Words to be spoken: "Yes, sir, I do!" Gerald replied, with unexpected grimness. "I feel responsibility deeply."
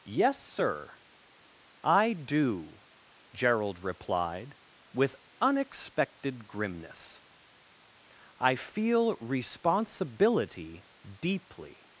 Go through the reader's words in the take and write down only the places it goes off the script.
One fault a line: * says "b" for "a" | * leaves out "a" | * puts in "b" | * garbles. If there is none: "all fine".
all fine